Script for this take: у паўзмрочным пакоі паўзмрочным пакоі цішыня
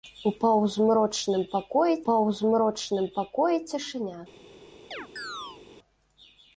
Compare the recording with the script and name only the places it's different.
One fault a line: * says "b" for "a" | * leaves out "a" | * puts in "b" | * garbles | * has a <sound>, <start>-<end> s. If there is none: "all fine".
* has a chirp, 4.9-5.6 s